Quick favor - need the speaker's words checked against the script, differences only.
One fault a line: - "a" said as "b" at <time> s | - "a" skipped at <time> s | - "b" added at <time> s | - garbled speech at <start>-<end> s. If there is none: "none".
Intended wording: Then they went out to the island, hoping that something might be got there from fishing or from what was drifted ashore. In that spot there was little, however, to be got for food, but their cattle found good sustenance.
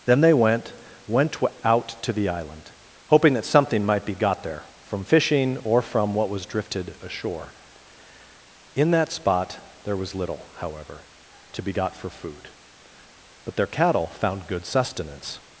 - "went" added at 1.1 s